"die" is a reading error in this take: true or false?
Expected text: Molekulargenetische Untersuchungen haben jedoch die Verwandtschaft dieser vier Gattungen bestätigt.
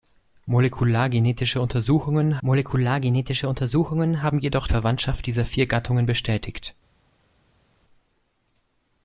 true